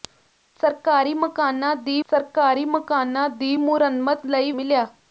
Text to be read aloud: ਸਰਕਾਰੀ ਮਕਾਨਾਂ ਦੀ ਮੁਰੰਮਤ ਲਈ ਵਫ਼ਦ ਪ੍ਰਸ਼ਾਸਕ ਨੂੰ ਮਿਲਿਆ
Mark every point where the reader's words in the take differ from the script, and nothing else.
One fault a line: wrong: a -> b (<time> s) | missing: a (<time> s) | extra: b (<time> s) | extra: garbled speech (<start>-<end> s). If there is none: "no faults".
wrong: ਮੁਰੰਮਤ ਲਈ ਵਫ਼ਦ ਪ੍ਰਸ਼ਾਸਕ ਨੂੰ -> ਸਰਕਾਰੀ ਮਕਾਨਾਂ ਦੀ ਮੁਰੰਮਤ ਲਈ (2.1 s)